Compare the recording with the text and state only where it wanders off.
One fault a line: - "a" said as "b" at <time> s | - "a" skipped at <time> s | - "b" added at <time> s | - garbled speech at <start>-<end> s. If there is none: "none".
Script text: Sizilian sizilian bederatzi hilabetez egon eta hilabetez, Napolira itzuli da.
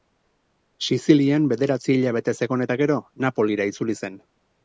- "sizilian" skipped at 1.4 s
- "hilabetez" said as "gero" at 2.8 s
- "da" said as "zen" at 4.0 s